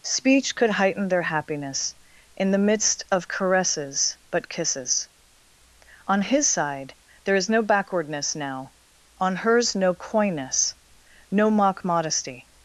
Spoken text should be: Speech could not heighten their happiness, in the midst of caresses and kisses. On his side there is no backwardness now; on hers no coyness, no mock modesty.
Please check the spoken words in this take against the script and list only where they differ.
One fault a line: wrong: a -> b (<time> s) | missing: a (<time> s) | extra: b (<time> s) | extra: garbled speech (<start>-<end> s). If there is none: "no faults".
missing: not (0.7 s)
wrong: and -> but (4.3 s)